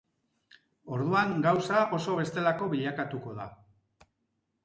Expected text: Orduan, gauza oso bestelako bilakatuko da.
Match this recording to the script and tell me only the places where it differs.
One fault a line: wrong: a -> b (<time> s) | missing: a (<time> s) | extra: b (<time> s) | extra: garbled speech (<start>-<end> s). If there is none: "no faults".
no faults